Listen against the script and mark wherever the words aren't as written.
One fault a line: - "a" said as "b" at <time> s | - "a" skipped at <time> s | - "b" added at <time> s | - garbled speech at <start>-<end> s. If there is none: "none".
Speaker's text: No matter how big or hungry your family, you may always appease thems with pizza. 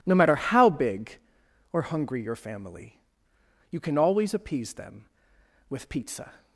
- "may" said as "can" at 3.8 s
- "thems" said as "them" at 4.7 s